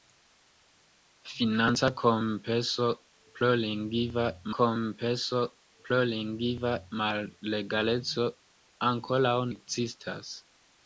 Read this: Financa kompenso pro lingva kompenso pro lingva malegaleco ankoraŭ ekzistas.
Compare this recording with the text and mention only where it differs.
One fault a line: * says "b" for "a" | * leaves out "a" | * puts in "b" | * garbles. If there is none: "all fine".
all fine